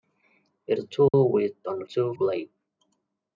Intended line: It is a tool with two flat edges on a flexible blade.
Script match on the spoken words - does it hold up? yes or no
no